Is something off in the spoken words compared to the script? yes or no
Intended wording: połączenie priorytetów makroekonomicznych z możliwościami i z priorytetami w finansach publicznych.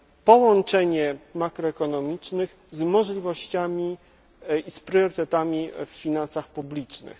yes